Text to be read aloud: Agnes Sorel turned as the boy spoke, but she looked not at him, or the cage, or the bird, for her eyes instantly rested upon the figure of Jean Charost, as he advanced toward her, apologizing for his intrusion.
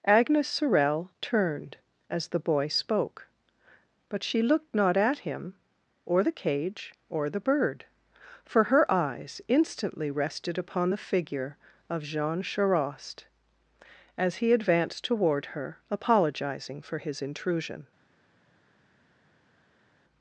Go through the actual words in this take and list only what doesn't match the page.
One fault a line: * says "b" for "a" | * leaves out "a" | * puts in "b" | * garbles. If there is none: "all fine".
all fine